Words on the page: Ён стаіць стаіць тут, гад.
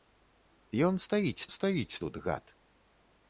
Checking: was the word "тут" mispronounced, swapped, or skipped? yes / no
no